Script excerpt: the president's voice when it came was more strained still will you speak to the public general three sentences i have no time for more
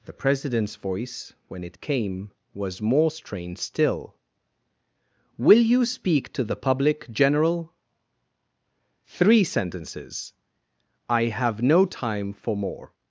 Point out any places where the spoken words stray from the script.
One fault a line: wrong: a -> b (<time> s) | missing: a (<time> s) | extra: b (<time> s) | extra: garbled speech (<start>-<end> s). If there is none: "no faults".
no faults